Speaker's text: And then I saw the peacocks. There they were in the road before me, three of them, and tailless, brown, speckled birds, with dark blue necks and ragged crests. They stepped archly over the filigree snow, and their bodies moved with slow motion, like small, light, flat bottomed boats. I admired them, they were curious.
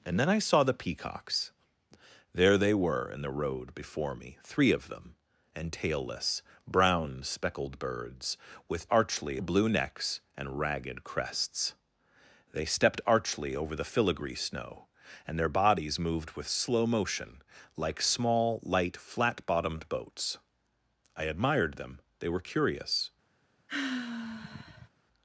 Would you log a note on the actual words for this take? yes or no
yes